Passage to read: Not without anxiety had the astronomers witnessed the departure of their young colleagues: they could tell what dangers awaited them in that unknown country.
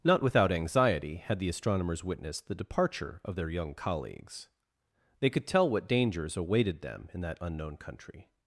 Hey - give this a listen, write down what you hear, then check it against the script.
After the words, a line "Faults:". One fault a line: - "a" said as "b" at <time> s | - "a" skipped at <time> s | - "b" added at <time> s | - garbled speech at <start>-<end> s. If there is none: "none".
Not without anxiety had the astronomers witnessed the departure of their young colleagues: they could tell what dangers awaited them in that unknown country.
Faults:
none